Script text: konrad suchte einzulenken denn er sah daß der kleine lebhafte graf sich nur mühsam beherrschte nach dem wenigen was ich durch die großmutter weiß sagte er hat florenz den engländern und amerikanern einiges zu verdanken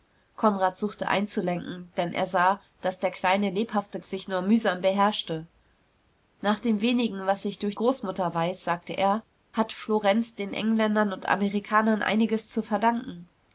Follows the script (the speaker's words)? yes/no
no